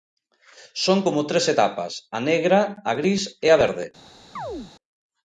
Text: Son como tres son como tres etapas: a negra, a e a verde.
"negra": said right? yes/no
yes